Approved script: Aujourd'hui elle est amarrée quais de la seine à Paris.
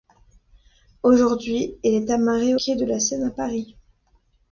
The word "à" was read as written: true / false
true